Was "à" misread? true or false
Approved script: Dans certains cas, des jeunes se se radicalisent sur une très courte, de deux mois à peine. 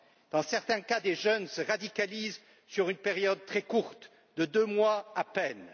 false